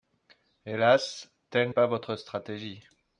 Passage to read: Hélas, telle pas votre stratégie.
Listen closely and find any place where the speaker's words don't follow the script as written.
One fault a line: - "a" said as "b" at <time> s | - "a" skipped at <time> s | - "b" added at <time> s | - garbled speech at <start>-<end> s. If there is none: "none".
none